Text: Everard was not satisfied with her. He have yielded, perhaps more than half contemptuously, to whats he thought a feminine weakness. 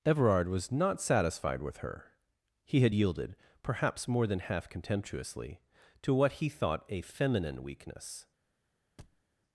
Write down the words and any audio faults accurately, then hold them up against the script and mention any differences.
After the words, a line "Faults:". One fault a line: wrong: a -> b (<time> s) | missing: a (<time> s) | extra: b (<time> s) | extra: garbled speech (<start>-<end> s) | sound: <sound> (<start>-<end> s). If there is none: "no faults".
Everard was not satisfied with her. He had yielded, perhaps more than half contemptuously, to what he thought a feminine weakness.
Faults:
wrong: have -> had (2.8 s)
wrong: whats -> what (6.1 s)
sound: thud (9.0-9.2 s)